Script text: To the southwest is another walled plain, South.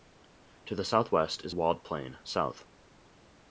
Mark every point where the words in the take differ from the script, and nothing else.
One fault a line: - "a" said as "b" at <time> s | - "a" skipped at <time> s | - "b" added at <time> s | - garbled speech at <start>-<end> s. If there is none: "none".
- "another" skipped at 1.5 s